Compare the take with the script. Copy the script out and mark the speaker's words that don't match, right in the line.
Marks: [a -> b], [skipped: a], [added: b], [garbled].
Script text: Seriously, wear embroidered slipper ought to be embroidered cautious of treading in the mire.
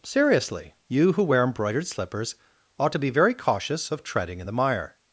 Seriously, [added: you who] wear embroidered [slipper -> slippers] ought to be [embroidered -> very] cautious of treading in the mire.